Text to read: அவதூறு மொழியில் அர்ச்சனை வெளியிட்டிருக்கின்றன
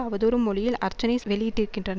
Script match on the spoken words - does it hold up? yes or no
yes